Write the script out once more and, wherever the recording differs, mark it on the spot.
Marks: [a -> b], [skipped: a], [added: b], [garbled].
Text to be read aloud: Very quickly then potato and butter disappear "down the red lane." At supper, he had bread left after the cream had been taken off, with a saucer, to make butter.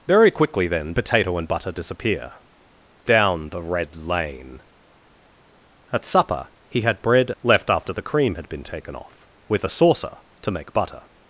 Very quickly then potato and butter disappear "down the red lane." At supper, he had bread left after the cream had been taken off, with a saucer, to make butter.